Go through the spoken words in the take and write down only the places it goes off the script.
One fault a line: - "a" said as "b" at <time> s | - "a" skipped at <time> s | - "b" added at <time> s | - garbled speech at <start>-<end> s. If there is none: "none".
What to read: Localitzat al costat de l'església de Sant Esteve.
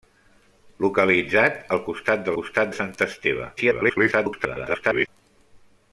- "l'església" said as "costat" at 2.4 s
- garbled speech at 3.6-5.1 s